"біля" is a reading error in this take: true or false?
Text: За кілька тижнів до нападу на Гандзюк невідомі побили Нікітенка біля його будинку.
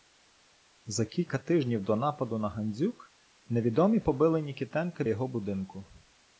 true